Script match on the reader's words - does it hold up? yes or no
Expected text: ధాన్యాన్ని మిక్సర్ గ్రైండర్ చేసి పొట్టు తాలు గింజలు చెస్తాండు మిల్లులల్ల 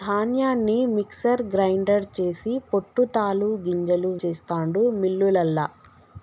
yes